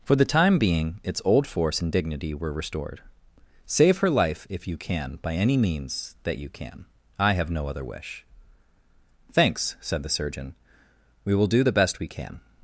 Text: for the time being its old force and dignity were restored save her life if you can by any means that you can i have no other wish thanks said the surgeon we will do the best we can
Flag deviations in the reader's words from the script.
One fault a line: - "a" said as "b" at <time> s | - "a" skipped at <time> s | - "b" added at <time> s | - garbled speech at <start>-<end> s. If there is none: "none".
none